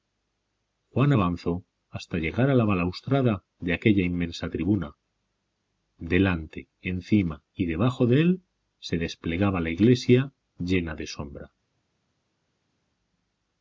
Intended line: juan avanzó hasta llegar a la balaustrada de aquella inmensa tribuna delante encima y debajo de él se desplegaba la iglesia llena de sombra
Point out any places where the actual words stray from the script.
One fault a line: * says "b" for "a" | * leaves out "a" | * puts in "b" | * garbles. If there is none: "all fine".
all fine